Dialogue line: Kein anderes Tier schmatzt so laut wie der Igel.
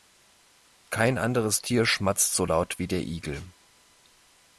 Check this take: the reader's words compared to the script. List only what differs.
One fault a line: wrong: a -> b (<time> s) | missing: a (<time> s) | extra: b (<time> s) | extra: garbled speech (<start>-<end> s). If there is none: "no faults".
no faults